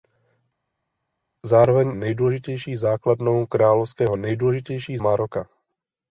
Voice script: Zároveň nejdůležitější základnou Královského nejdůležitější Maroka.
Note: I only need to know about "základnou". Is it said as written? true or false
true